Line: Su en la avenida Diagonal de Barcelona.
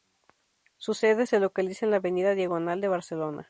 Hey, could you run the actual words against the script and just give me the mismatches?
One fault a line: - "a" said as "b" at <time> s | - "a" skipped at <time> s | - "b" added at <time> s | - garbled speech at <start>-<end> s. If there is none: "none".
- "sede se localiza" added at 0.9 s